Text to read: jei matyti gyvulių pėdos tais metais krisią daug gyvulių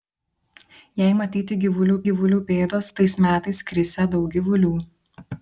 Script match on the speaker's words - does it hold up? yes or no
no